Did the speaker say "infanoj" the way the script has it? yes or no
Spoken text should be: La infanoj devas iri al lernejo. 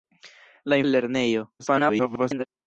no